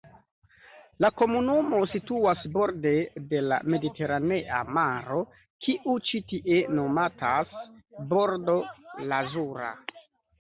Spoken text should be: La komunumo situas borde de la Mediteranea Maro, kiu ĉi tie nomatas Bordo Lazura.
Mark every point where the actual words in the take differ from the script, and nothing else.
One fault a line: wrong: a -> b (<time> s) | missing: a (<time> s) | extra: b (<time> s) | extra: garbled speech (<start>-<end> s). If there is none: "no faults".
no faults